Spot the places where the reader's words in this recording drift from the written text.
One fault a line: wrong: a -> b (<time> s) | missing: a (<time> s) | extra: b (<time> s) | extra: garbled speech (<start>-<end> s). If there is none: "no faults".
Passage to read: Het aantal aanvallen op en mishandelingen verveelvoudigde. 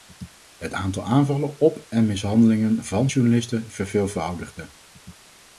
extra: van journalisten (2.8 s)